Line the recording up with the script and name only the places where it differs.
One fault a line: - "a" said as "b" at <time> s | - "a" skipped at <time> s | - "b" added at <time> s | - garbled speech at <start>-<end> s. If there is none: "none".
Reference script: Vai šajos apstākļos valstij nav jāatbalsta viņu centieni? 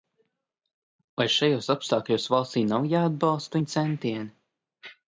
none